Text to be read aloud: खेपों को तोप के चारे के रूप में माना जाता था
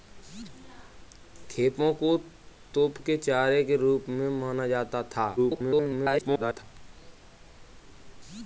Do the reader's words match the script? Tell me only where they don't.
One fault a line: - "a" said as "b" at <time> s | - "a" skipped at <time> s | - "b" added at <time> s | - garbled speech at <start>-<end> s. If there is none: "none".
- garbled speech at 5.4-6.6 s